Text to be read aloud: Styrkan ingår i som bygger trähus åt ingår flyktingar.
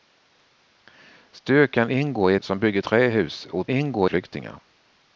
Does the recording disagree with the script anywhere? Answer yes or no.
no